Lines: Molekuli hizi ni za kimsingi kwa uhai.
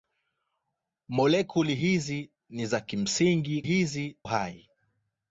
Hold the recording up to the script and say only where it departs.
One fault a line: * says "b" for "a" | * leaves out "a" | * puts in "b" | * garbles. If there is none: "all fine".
* says "hizi" for "kwa"